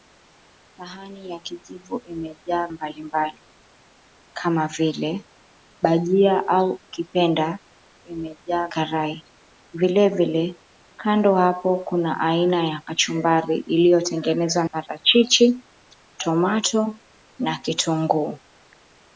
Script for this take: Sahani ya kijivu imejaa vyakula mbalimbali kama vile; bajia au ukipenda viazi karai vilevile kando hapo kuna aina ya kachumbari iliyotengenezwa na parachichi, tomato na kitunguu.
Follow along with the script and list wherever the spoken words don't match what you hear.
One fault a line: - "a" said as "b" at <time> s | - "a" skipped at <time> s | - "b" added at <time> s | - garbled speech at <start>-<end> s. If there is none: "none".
- "vyakula" skipped at 2.7 s
- "viazi" said as "imejaa" at 8.1 s
- "na" skipped at 14.6 s